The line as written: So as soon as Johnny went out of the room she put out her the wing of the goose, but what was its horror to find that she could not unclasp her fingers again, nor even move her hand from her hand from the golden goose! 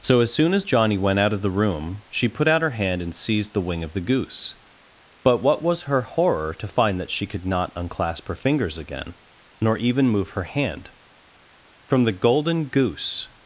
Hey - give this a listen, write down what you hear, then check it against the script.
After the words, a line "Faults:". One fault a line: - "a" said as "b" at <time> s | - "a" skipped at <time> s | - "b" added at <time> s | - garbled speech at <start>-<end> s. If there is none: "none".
So as soon as Johnny went out of the room she put out her hand and seized the wing of the goose, but what was her horror to find that she could not unclasp her fingers again, nor even move her hand from the golden goose!
Faults:
- "hand and seized" added at 2.7 s
- "its" said as "her" at 5.8 s
- "her hand from" skipped at 12.1 s